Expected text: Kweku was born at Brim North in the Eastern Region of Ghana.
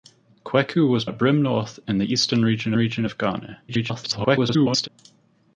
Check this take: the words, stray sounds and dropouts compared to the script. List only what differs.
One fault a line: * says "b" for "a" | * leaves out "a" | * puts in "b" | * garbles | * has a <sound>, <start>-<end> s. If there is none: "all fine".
* leaves out "born"
* puts in "Region"
* garbles